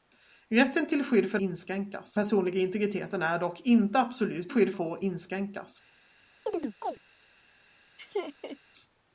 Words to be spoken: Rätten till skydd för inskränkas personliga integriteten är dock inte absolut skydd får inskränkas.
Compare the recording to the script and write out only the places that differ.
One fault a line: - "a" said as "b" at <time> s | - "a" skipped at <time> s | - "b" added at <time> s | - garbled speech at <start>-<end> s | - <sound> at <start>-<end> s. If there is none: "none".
- chirp at 6.5-7.0 s
- laugh at 8.0-8.6 s